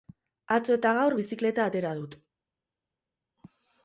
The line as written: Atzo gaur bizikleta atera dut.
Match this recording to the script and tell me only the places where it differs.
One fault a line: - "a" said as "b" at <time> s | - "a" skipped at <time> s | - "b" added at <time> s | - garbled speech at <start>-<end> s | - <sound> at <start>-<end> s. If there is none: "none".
- "eta" added at 0.8 s